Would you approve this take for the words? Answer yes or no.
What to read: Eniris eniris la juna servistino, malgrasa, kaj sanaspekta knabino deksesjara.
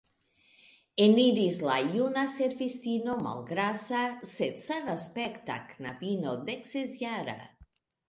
no